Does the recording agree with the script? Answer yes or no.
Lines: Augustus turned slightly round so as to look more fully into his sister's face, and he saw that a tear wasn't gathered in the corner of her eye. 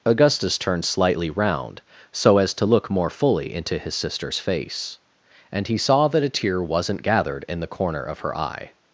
yes